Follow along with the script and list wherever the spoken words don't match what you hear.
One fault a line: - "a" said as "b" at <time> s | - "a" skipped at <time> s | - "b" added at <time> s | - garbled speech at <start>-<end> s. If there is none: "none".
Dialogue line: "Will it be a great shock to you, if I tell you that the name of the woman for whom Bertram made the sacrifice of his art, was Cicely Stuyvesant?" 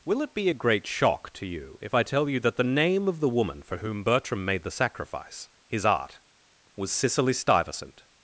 - "of" skipped at 5.5 s